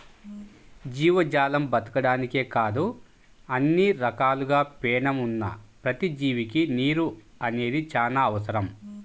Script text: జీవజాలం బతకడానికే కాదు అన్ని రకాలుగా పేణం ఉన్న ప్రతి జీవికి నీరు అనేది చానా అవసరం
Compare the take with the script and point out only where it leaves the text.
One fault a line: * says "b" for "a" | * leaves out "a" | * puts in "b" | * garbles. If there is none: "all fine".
all fine